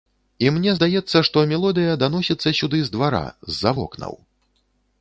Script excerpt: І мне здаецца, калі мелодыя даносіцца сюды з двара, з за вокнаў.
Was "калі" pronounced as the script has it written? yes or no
no